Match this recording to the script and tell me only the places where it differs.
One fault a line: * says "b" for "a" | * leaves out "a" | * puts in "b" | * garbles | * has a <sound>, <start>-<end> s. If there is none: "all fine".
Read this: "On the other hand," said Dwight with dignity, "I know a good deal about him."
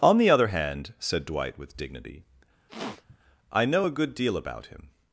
* has a sniff, 2.7-3.2 s